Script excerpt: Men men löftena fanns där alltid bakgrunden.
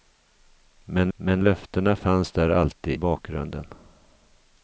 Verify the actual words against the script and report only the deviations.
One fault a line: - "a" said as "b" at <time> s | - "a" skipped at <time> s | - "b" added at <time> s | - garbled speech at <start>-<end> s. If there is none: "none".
none